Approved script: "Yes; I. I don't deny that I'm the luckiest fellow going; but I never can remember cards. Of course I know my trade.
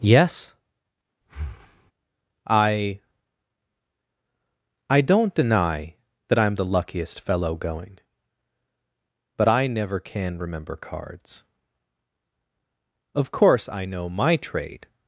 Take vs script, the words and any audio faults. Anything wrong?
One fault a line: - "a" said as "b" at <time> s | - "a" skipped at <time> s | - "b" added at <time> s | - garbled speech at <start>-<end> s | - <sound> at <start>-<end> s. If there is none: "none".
- breath at 1.2-1.9 s